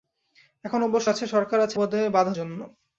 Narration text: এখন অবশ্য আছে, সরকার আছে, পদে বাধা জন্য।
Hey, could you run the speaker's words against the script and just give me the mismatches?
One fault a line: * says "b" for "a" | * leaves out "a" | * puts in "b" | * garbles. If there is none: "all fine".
all fine